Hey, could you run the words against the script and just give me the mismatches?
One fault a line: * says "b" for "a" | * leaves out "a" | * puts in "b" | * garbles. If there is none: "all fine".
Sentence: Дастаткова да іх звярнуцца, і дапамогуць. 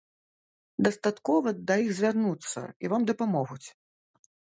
* puts in "вам"